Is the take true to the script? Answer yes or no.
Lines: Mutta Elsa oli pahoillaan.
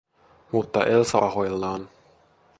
no